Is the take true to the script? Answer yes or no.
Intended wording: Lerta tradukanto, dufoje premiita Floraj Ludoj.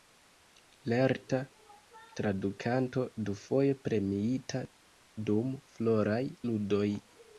no